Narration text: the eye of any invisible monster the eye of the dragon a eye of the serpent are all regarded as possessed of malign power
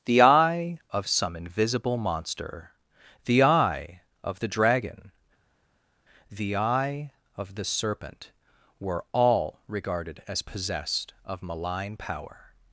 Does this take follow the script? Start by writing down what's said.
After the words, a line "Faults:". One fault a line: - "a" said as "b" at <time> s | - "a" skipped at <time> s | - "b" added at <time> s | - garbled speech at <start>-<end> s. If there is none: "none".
the eye of some invisible monster the eye of the dragon the eye of the serpent were all regarded as possessed of malign power
Faults:
- "any" said as "some" at 1.1 s
- "a" said as "the" at 6.3 s
- "are" said as "were" at 8.8 s